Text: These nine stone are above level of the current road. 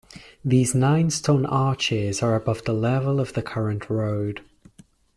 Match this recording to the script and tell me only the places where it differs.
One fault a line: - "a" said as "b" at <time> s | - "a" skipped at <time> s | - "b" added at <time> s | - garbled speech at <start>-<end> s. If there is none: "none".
- "arches" added at 1.4 s
- "the" added at 2.6 s